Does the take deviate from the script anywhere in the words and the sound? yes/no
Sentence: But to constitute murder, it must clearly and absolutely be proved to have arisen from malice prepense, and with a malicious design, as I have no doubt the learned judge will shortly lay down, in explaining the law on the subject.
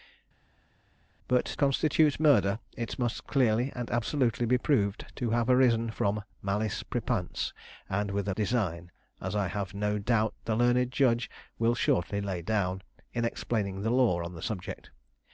yes